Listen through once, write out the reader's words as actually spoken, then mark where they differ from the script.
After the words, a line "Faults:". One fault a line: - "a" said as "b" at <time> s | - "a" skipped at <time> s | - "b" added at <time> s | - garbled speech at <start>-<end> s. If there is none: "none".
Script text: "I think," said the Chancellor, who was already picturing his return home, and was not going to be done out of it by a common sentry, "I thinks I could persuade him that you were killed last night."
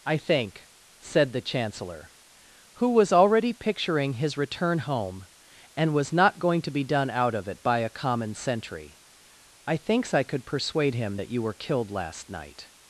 "I think," said the Chancellor, who was already picturing his return home, and was not going to be done out of it by a common sentry, "I thinks I could persuade him that you were killed last night."
Faults:
none